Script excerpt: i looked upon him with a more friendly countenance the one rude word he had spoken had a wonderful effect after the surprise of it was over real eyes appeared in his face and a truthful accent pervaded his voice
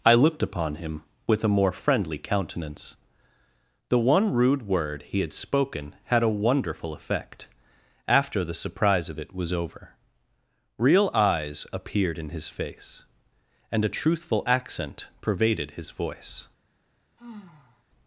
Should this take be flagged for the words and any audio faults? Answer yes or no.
yes